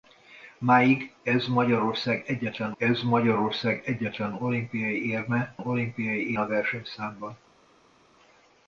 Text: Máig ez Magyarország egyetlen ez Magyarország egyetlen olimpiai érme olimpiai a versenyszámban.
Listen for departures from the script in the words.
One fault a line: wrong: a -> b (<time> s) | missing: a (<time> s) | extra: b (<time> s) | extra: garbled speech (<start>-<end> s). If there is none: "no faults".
no faults